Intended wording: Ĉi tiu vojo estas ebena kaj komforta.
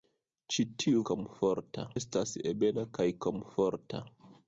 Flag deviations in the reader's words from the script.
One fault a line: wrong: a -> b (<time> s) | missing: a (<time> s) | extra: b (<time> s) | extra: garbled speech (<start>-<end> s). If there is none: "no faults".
wrong: vojo -> komforta (1.1 s)